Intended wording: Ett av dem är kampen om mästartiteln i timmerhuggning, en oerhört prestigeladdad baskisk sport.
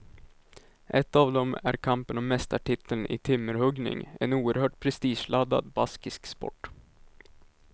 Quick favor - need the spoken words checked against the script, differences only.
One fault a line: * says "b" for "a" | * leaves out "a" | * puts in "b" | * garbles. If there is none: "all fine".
all fine